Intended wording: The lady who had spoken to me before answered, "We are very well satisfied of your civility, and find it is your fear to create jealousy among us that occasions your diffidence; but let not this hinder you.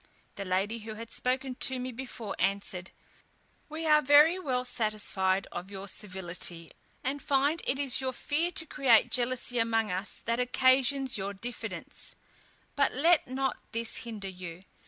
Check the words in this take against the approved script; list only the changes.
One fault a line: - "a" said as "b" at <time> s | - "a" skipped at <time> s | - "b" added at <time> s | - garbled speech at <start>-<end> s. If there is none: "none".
none